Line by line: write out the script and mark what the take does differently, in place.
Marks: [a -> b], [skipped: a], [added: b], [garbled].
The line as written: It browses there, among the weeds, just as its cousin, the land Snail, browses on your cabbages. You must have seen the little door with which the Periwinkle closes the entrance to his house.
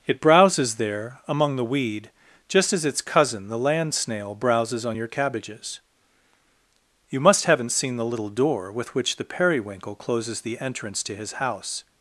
It browses there, among the [weeds, -> weed] just as its cousin, the land Snail, browses on your cabbages. You must [have -> haven't] seen the little door with which the Periwinkle closes the entrance to his house.